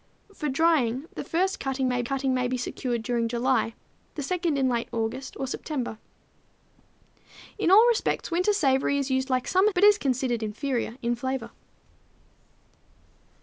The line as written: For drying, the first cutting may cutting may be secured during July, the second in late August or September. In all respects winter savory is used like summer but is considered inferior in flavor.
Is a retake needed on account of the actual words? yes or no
no